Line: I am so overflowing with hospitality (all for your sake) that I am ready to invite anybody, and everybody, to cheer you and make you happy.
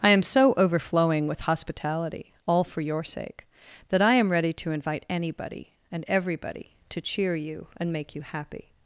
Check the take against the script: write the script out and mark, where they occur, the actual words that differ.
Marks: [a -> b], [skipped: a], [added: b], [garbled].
I am so overflowing with hospitality (all for your sake) that I am ready to invite anybody, and everybody, to cheer you and make you happy.